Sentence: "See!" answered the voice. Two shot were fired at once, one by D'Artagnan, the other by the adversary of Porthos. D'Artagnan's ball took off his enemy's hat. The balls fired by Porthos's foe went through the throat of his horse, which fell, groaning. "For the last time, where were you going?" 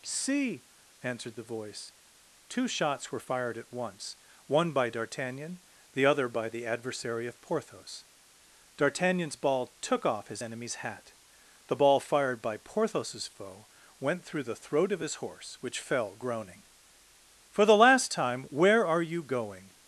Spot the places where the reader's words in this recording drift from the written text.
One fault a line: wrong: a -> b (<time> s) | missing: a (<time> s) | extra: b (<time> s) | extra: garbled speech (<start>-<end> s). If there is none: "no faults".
wrong: shot -> shots (2.7 s)
wrong: balls -> ball (11.8 s)
wrong: were -> are (18.9 s)